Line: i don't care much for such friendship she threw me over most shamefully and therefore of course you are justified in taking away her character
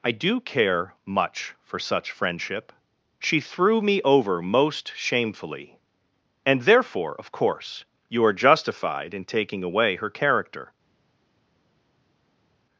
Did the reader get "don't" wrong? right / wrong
wrong